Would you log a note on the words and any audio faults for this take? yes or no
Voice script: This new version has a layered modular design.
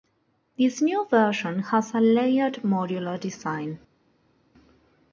no